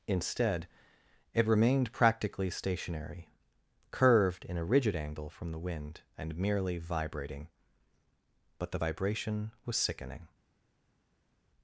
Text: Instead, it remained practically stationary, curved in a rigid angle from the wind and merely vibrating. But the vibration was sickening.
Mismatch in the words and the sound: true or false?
false